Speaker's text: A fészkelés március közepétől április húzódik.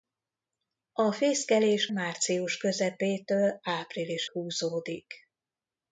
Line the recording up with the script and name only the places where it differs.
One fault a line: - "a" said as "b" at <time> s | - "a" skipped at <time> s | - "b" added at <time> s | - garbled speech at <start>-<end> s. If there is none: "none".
none